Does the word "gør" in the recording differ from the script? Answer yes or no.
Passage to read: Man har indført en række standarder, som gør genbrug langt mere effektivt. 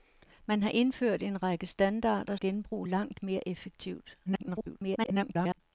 yes